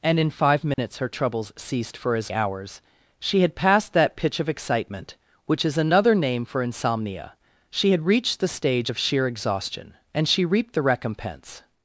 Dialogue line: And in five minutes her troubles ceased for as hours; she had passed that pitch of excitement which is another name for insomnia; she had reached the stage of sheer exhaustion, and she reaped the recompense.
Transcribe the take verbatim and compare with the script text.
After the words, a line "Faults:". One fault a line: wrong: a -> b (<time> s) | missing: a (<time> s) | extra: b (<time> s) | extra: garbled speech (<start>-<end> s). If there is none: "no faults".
And in five minutes her troubles ceased for as hours; she had passed that pitch of excitement which is another name for insomnia; she had reached the stage of sheer exhaustion, and she reaped the recompense.
Faults:
no faults